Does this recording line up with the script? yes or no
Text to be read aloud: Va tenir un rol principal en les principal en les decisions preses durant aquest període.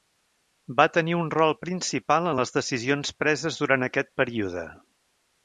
no